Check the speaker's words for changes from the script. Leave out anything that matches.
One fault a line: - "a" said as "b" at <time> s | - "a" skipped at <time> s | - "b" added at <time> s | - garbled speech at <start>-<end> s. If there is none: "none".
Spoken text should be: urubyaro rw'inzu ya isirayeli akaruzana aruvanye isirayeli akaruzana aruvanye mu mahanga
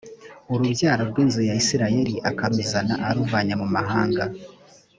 - "isirayeli akaruzana aruvanye" skipped at 3.5 s